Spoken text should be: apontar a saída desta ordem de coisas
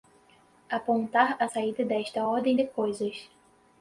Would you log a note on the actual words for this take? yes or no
no